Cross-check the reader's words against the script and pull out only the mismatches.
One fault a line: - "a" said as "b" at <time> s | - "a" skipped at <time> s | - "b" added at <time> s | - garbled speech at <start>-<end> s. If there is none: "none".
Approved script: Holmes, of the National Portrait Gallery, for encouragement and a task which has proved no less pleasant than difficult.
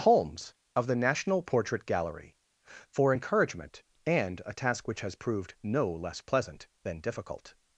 none